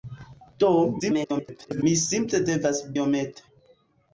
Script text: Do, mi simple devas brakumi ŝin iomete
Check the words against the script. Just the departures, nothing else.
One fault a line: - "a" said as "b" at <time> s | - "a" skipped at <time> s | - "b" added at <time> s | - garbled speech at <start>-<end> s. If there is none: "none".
- garbled speech at 1.0-1.8 s
- "brakumi ŝin" skipped at 2.8 s